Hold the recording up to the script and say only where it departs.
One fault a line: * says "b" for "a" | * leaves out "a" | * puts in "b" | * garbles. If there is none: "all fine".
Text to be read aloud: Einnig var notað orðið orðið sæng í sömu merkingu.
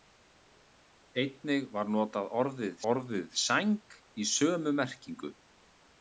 all fine